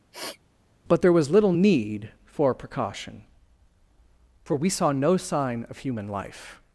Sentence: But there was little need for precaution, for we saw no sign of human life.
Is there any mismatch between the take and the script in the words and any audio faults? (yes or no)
yes